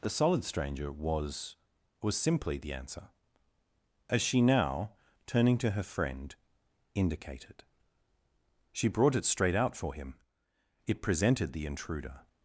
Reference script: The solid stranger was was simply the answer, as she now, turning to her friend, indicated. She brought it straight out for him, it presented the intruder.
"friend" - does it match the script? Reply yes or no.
yes